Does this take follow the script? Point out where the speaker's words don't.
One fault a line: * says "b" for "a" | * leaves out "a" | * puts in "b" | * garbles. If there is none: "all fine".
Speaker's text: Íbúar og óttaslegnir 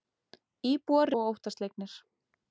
all fine